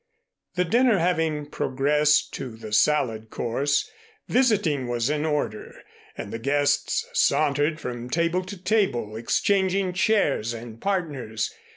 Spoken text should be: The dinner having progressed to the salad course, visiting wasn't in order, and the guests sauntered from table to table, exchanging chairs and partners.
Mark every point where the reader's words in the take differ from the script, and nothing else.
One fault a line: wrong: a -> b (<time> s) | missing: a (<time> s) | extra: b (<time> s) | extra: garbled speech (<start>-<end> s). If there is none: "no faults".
wrong: wasn't -> was (4.9 s)